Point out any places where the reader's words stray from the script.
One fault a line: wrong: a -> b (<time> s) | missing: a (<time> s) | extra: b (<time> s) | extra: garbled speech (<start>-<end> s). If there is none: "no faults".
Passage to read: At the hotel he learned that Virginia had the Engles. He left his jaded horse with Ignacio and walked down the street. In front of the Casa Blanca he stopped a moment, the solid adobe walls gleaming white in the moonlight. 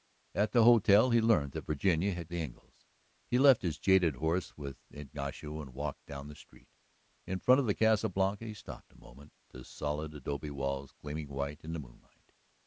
no faults